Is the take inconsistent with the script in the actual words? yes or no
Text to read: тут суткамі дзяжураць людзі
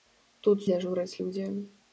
yes